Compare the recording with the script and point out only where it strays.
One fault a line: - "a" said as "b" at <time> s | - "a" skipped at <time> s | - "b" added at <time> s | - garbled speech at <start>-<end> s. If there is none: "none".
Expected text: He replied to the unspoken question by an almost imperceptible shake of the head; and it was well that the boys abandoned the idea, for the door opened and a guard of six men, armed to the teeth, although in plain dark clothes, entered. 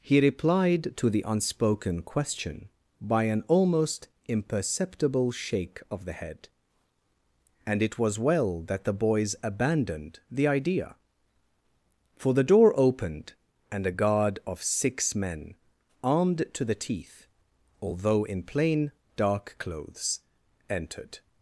none